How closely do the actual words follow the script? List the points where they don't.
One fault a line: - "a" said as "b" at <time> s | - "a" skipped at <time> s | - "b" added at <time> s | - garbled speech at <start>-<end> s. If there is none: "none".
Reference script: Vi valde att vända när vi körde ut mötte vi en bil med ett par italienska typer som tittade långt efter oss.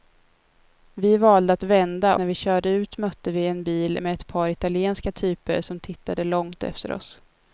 none